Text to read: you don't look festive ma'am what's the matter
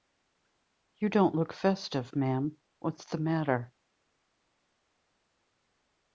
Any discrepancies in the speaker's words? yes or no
no